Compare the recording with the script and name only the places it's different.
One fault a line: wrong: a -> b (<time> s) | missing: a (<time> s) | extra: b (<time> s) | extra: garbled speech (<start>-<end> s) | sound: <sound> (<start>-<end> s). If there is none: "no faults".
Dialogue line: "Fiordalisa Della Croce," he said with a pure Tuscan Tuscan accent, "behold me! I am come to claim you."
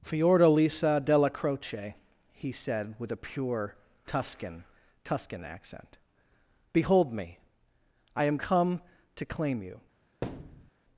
sound: thud (10.2-10.7 s)